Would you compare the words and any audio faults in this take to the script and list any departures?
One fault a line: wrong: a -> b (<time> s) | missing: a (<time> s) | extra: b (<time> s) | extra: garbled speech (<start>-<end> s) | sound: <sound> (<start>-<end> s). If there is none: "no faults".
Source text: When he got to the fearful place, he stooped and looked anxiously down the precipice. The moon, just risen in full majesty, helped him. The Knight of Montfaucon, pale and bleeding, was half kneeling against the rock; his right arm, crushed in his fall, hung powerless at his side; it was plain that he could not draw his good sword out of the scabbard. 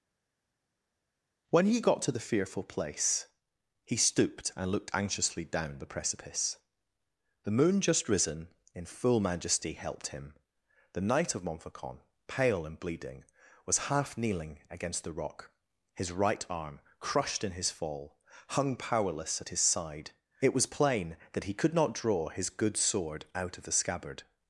no faults